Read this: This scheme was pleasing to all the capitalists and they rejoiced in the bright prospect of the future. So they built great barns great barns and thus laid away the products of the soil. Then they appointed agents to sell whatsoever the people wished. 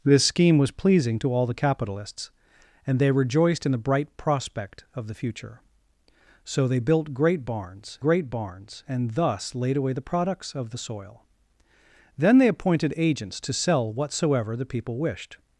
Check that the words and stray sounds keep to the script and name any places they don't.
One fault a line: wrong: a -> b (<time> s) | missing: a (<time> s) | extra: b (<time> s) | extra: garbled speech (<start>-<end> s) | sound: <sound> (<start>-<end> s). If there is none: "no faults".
no faults